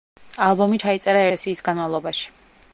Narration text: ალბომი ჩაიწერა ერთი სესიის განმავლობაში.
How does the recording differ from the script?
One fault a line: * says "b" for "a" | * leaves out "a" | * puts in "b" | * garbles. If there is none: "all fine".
* leaves out "ერთი"